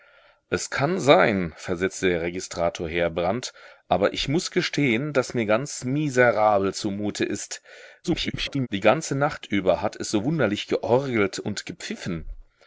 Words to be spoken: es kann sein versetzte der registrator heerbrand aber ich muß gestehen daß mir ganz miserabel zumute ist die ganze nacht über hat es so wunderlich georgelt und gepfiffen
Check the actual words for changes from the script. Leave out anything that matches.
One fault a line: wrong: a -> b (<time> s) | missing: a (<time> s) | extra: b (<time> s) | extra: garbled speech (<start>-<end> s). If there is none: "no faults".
extra: garbled speech (8.0-8.7 s)